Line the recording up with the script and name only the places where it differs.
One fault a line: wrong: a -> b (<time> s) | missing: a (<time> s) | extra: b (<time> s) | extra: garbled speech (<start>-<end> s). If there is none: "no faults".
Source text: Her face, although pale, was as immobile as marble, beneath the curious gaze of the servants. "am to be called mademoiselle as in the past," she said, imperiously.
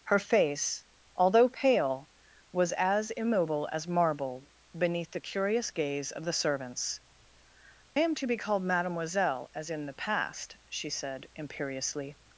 no faults